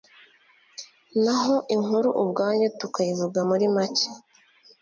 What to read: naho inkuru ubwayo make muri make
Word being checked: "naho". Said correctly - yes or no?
yes